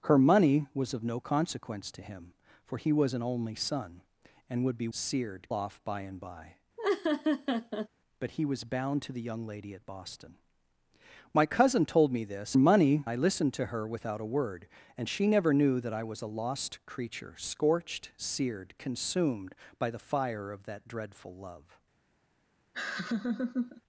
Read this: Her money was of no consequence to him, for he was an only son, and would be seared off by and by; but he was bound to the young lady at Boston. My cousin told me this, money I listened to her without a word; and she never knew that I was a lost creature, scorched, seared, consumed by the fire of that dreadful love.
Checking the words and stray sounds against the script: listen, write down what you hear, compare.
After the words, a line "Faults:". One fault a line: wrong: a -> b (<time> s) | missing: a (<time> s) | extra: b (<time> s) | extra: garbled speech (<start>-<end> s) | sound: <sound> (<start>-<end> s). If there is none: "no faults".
Her money was of no consequence to him, for he was an only son, and would be seared off by and by; but he was bound to the young lady at Boston. My cousin told me this, money I listened to her without a word; and she never knew that I was a lost creature, scorched, seared, consumed by the fire of that dreadful love.
Faults:
sound: laugh (6.8-7.9 s)
sound: laugh (22.7-23.8 s)